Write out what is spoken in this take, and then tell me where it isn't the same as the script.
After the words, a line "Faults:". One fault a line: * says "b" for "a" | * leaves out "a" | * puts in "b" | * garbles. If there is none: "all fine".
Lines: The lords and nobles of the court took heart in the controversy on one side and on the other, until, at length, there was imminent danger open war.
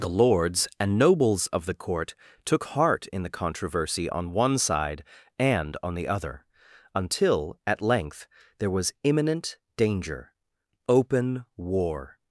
The lords and nobles of the court took heart in the controversy on one side and on the other, until, at length, there was imminent danger open war.
Faults:
all fine